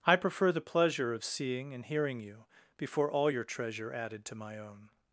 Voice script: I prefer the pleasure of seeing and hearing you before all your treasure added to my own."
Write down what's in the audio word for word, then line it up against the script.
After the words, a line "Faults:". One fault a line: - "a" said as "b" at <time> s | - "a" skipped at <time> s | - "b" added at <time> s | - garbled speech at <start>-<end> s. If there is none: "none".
I prefer the pleasure of seeing and hearing you before all your treasure added to my own."
Faults:
none